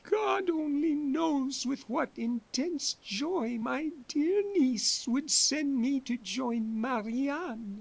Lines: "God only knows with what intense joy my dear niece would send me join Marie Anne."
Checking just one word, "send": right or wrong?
right